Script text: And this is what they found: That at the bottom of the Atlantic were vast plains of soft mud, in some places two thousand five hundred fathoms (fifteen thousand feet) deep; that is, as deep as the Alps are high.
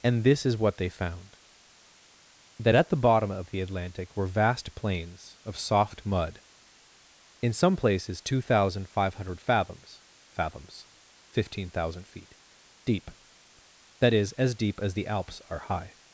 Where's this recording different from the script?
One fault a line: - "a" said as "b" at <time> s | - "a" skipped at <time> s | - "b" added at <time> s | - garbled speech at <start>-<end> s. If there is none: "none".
- "fathoms" added at 10.3 s